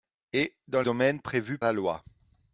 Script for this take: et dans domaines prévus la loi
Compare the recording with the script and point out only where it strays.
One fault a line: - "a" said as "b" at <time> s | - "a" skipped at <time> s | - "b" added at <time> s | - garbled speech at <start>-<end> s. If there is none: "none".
none